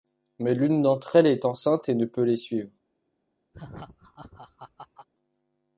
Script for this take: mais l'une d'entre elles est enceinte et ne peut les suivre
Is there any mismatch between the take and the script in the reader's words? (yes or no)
no